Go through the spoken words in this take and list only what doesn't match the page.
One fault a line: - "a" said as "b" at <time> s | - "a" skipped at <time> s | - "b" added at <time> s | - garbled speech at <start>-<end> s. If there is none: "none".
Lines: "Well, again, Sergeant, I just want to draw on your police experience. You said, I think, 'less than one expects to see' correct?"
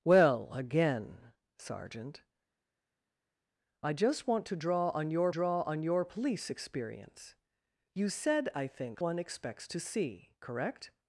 - "draw on your" added at 5.3 s
- "less than" skipped at 9.0 s